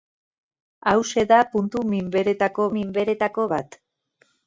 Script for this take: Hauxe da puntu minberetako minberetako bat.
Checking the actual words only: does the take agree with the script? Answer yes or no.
yes